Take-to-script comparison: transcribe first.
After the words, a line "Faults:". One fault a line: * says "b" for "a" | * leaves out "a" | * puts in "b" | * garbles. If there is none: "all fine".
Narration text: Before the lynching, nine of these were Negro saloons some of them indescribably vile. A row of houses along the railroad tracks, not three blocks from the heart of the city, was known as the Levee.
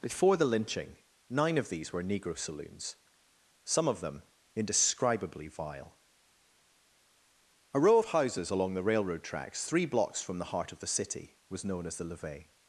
Before the lynching, nine of these were Negro saloons some of them indescribably vile. A row of houses along the railroad tracks, three blocks from the heart of the city, was known as the Levee.
Faults:
* leaves out "not"